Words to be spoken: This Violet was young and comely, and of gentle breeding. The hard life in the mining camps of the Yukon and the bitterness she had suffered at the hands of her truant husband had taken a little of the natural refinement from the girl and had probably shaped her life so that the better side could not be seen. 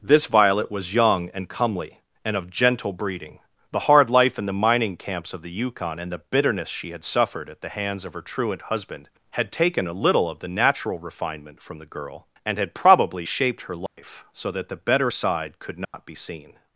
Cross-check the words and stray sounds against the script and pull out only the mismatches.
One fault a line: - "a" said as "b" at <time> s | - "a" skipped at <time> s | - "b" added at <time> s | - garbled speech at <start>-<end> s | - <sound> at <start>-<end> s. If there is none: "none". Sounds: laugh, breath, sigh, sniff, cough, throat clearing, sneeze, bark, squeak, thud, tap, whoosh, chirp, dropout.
- dropout at 13.9-14.0 s
- dropout at 15.8-15.9 s